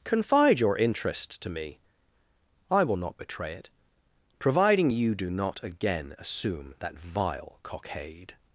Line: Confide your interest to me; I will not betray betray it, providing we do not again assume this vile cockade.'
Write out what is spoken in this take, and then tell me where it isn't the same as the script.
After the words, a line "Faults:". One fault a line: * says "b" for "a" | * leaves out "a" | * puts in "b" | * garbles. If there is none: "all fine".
Confide your interest to me; I will not betray it, providing you do not again assume that vile cockade.'
Faults:
* leaves out "betray"
* says "you" for "we"
* says "that" for "this"